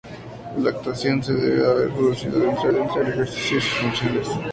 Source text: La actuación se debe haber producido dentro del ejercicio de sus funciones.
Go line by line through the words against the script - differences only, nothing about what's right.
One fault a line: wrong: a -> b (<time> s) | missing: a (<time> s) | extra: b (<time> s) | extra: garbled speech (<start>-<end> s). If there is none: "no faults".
extra: dentro (2.7 s)